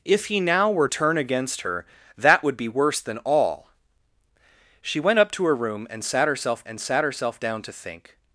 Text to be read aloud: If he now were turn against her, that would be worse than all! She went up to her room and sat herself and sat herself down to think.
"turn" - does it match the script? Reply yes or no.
yes